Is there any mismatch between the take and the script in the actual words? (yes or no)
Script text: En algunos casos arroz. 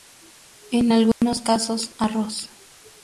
no